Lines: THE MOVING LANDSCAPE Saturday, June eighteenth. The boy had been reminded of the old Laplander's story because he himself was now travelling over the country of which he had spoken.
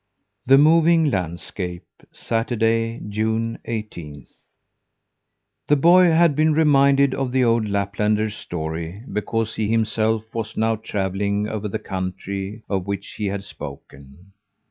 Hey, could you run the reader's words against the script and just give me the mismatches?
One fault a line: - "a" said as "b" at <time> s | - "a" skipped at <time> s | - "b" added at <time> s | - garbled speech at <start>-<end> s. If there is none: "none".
none